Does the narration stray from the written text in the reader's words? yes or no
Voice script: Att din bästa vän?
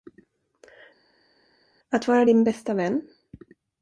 yes